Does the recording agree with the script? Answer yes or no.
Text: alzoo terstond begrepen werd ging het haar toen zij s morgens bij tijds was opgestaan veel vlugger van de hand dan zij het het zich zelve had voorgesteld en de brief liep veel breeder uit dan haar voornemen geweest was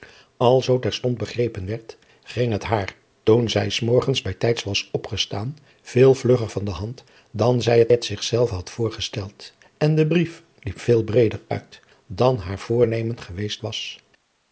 yes